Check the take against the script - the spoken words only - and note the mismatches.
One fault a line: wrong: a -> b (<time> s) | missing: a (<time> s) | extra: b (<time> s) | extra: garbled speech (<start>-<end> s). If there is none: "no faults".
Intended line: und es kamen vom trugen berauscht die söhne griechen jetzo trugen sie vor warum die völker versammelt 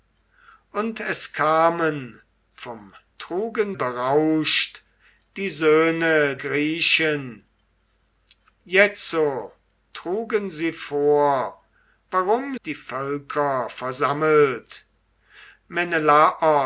no faults